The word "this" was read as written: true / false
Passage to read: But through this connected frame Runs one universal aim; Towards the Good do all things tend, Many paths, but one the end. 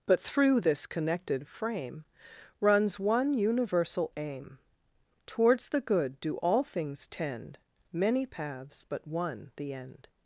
true